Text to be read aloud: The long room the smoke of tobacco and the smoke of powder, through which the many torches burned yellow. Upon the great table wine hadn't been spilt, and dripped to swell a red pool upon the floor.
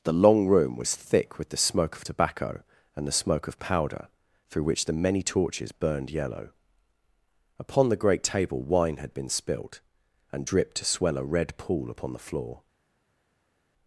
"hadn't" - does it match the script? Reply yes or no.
no